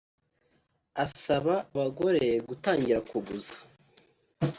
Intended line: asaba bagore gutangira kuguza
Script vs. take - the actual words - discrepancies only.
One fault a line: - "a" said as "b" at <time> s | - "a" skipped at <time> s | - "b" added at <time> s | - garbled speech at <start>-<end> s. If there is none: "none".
none